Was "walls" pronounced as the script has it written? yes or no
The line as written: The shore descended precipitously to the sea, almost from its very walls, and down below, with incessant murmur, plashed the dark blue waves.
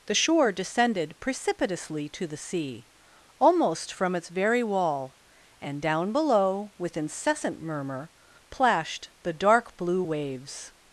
no